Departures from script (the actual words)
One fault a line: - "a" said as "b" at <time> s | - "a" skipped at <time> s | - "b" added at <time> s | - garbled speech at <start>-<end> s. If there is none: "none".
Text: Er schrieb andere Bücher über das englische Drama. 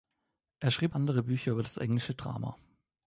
none